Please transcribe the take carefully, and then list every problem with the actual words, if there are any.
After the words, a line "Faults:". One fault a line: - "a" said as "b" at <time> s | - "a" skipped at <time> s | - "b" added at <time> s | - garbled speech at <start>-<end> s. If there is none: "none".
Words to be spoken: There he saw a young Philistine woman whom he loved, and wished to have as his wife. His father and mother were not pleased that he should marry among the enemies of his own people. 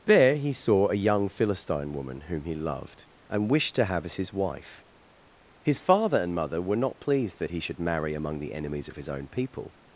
There he saw a young Philistine woman whom he loved, and wished to have as his wife. His father and mother were not pleased that he should marry among the enemies of his own people.
Faults:
none